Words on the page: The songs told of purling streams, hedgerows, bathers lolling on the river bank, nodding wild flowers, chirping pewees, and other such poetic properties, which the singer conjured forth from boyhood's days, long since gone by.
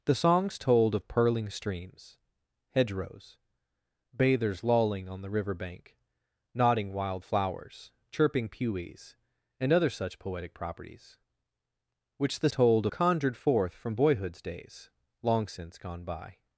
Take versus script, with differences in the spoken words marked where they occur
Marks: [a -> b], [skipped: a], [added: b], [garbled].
The songs told of purling streams, hedgerows, bathers lolling on the river bank, nodding wild flowers, chirping pewees, and other such poetic properties, which the [singer -> told] conjured forth from boyhood's days, long since gone by.